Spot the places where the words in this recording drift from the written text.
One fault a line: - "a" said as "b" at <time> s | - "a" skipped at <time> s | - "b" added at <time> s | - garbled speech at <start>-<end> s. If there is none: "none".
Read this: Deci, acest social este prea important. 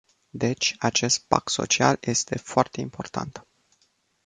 - "pact" added at 1.3 s
- "prea" said as "foarte" at 2.4 s